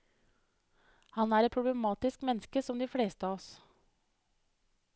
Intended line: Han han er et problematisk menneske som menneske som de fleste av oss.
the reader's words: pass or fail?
fail